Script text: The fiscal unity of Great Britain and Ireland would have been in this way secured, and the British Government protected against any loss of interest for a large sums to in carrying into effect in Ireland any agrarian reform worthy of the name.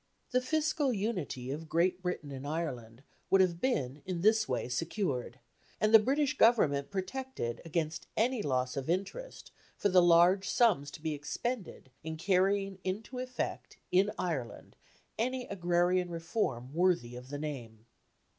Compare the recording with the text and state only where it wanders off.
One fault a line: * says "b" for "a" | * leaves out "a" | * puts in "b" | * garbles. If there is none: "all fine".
* says "the" for "a"
* puts in "be expended"